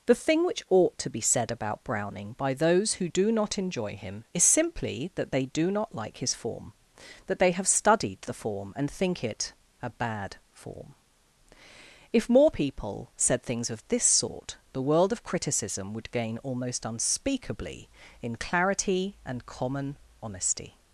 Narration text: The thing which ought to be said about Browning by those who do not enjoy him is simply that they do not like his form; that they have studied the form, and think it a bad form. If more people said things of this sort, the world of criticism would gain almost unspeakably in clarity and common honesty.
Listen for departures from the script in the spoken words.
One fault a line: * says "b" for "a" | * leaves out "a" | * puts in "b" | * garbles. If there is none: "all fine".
all fine